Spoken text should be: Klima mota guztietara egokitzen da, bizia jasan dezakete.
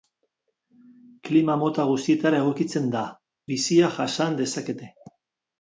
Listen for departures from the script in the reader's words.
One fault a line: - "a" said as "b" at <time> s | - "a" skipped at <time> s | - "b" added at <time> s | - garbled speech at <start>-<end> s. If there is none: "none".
none